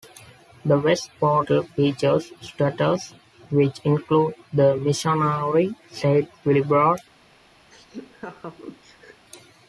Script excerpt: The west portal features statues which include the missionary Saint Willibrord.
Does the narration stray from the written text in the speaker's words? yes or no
no